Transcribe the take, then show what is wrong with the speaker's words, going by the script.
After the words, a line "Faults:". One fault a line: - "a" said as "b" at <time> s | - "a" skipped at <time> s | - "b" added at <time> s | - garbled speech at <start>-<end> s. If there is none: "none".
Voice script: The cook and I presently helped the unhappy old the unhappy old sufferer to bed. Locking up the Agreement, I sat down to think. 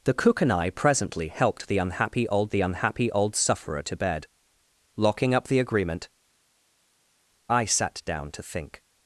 The cook and I presently helped the unhappy old the unhappy old sufferer to bed. Locking up the Agreement, I sat down to think.
Faults:
none